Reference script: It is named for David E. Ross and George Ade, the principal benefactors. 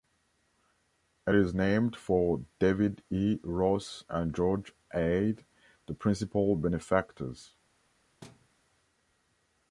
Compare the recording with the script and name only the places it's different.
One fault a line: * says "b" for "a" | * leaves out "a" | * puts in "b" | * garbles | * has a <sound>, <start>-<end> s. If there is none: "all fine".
* has a thud, 8.2-8.5 s